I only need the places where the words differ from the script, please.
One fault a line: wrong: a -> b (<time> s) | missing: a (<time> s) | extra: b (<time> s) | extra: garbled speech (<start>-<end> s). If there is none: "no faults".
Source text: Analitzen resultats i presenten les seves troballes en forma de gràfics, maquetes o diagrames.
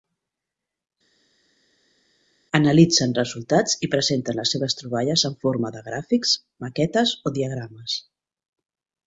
no faults